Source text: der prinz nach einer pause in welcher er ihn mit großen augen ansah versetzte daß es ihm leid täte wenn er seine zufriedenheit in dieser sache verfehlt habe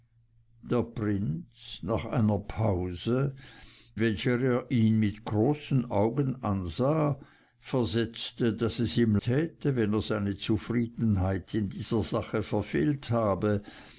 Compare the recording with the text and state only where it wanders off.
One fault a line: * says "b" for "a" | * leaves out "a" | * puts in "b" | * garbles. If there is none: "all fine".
* leaves out "in"
* leaves out "leid"